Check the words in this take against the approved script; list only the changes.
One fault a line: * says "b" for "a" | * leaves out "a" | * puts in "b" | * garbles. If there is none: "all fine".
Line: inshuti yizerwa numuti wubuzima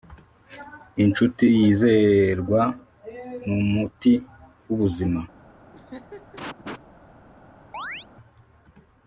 all fine